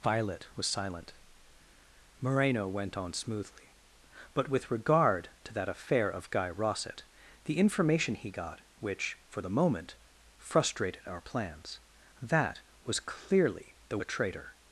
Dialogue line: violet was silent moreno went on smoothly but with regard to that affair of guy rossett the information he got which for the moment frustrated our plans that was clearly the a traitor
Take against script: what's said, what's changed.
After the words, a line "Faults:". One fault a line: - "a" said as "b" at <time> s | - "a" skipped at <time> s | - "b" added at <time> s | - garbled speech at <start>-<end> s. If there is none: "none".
violet was silent moreno went on smoothly but with regard to that affair of guy rossett the information he got which for the moment frustrated our plans that was clearly the a traitor
Faults:
none